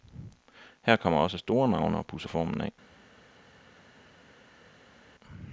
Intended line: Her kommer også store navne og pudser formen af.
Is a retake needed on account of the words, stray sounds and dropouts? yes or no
no